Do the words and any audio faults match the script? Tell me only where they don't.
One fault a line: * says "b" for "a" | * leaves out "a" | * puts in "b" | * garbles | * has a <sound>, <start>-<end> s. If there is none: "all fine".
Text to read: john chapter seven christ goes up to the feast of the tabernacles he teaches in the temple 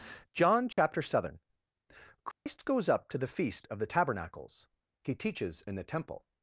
* has a dropout, 0.7-0.8 s
* has a dropout, 2.3-2.5 s